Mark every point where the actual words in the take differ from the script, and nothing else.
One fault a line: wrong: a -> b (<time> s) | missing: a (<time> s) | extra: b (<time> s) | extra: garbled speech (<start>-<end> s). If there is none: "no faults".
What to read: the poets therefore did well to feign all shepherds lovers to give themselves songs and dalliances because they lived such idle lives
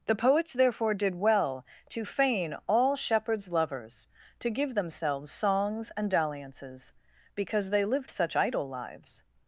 no faults